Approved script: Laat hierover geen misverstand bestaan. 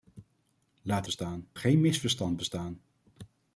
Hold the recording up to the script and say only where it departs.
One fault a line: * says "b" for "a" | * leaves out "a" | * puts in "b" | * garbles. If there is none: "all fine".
* says "bestaan" for "hierover"